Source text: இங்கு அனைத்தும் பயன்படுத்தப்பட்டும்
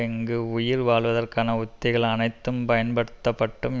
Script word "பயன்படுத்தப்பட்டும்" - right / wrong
right